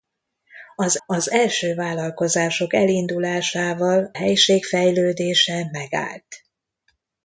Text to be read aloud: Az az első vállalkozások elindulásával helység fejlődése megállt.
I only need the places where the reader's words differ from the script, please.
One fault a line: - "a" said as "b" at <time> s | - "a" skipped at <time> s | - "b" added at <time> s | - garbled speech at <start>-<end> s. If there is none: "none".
none